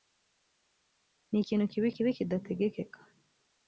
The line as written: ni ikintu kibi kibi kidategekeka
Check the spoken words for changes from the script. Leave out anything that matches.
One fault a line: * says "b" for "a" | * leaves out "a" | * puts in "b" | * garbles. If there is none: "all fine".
all fine